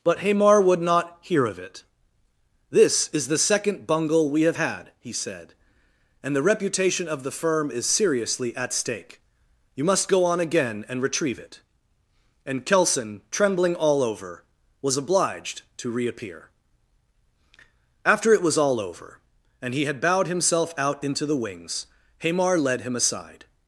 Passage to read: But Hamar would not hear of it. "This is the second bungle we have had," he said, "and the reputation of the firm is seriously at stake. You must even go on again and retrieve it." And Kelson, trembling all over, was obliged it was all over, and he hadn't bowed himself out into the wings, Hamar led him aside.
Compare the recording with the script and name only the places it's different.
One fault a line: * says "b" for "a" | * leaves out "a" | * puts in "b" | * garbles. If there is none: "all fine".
* leaves out "even"
* puts in "to reappear After"
* says "had" for "hadn't"